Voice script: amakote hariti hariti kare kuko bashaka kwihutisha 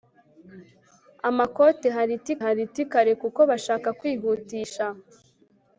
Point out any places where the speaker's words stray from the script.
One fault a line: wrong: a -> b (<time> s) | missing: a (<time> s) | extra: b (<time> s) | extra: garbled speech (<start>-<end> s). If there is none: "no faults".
no faults